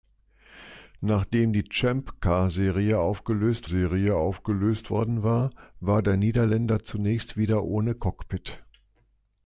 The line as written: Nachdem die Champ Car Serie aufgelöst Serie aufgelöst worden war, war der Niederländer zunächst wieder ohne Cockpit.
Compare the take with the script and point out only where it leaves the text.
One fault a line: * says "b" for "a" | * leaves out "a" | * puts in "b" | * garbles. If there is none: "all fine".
all fine